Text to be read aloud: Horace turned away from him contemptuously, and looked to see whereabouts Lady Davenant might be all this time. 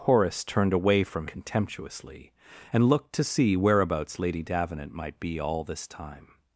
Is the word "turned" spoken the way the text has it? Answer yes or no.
yes